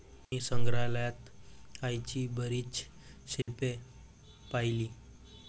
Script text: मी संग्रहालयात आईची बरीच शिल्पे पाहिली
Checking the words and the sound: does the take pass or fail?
fail